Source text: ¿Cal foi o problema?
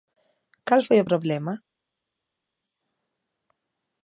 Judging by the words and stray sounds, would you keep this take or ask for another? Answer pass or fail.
pass